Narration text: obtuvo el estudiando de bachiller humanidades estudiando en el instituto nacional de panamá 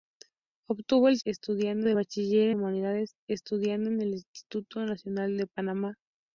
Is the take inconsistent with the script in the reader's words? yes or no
no